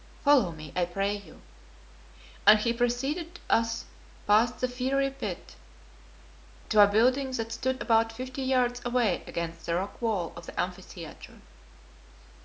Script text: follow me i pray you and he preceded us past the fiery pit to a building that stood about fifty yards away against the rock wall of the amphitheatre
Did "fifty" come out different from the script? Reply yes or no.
no